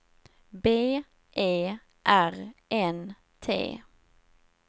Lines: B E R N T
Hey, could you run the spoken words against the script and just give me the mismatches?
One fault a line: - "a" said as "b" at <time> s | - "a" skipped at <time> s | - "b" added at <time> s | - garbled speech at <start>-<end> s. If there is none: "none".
none